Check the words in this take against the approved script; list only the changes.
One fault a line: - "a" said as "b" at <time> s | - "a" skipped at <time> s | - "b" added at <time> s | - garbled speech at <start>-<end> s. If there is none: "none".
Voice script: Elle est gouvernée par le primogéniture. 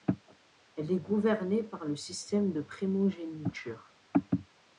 - "système de" added at 1.9 s